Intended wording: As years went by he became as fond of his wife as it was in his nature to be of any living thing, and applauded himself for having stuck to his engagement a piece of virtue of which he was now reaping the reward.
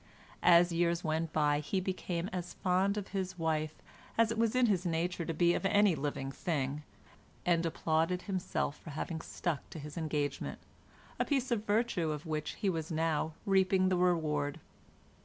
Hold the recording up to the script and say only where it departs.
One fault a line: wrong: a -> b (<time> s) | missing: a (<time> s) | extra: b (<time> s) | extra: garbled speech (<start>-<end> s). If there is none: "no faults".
no faults